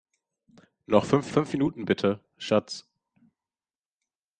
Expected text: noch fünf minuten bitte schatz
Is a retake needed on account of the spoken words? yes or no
yes